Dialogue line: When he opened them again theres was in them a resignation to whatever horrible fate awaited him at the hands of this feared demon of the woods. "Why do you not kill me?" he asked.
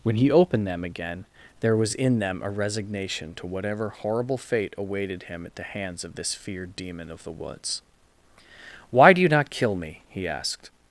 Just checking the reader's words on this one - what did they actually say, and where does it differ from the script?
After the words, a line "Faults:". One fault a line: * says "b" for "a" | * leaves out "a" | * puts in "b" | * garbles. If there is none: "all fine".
When he opened them again there was in them a resignation to whatever horrible fate awaited him at the hands of this feared demon of the woods. "Why do you not kill me?" he asked.
Faults:
* says "there" for "theres"